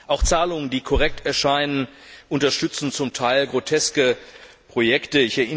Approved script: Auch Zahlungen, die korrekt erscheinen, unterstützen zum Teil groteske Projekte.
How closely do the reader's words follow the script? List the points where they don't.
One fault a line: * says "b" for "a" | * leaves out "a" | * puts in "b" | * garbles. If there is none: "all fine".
all fine